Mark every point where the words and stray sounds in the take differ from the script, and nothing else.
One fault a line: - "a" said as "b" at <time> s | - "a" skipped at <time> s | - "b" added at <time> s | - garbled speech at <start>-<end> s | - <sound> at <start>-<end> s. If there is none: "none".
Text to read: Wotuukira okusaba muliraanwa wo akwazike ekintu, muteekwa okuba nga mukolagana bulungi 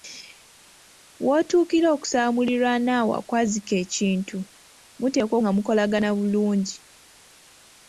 - "okuba" skipped at 5.4 s